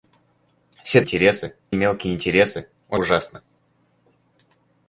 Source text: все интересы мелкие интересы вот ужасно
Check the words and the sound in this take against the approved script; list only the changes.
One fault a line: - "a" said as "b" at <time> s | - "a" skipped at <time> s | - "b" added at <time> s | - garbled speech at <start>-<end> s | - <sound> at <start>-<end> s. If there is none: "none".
none